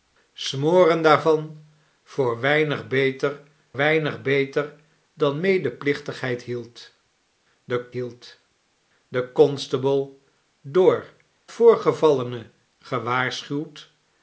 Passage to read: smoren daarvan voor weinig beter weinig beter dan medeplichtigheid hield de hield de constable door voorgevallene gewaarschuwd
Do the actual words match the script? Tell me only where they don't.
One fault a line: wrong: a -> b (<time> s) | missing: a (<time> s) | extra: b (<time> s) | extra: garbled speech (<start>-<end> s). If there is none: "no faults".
no faults